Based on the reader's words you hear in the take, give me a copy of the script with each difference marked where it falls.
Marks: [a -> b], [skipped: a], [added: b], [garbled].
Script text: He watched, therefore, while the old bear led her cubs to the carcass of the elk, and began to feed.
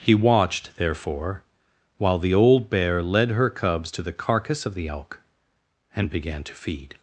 He watched, therefore, while the old bear led her cubs to the carcass of the elk, and began to feed.